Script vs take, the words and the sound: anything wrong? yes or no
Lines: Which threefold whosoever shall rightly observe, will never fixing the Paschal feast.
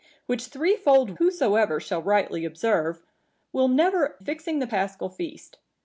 no